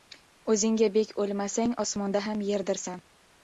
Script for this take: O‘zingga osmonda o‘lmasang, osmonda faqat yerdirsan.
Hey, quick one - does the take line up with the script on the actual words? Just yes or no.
no